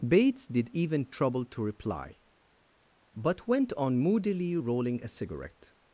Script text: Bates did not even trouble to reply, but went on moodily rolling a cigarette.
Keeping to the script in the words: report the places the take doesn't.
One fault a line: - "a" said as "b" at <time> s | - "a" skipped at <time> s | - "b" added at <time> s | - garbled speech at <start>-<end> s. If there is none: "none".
- "not" skipped at 0.7 s